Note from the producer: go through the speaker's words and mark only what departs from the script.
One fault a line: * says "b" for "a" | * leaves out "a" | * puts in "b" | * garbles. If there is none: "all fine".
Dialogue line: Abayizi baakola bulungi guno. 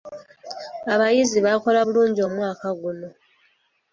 * puts in "omwaka"